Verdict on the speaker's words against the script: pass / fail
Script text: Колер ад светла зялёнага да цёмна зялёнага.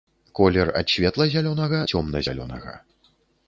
fail